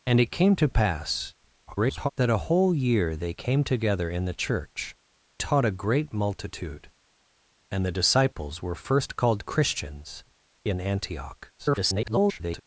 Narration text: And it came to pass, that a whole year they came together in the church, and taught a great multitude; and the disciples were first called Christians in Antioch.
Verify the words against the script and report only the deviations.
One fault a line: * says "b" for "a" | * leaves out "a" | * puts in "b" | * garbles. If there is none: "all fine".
* garbles
* leaves out "and"
* garbles